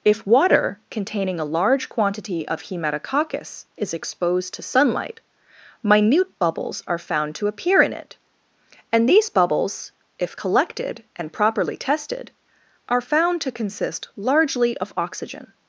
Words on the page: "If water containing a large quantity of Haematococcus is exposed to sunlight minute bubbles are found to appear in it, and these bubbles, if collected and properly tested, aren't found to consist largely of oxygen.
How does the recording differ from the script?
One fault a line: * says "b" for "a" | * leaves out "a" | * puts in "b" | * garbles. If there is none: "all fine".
* says "are" for "aren't"